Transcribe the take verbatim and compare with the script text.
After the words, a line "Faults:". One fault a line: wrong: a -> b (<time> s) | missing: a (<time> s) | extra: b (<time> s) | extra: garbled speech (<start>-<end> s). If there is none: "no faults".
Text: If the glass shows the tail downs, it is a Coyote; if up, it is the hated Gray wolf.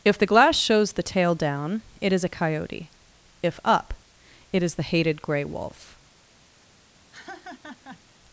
If the glass shows the tail down, it is a Coyote; if up, it is the hated Gray wolf.
Faults:
wrong: downs -> down (1.3 s)